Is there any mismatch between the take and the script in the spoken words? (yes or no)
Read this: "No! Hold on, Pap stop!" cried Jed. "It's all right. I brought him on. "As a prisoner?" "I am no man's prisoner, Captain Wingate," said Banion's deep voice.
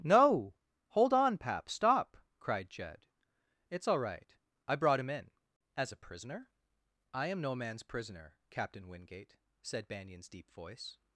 yes